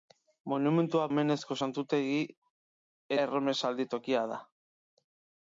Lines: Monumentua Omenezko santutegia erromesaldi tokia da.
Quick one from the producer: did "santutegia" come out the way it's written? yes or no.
yes